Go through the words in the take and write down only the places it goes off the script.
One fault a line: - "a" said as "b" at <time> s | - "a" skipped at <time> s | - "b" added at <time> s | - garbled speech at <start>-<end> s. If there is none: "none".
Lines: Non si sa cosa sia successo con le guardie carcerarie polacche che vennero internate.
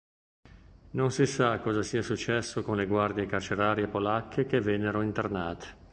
none